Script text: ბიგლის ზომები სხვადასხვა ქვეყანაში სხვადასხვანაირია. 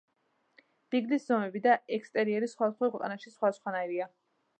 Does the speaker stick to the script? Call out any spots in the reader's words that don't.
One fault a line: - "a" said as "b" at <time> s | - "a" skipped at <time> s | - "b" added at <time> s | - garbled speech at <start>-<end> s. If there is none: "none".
- "და ექსტერიერი" added at 1.6 s